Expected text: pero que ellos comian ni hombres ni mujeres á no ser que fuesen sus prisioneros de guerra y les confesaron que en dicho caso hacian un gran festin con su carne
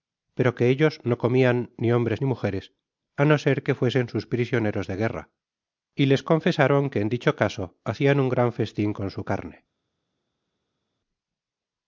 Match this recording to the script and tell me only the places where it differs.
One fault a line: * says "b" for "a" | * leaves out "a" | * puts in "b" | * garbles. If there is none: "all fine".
* puts in "no"